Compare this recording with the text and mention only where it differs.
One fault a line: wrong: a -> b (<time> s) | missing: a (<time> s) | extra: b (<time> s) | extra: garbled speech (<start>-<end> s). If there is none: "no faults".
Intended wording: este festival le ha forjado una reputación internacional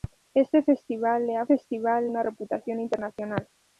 wrong: forjado -> festival (1.4 s)